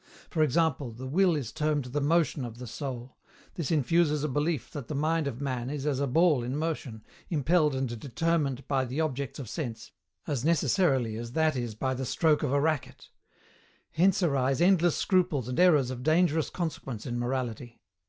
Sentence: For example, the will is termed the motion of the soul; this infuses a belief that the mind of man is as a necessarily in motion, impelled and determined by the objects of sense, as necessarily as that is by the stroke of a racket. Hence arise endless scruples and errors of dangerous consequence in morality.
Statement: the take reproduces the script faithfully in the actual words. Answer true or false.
false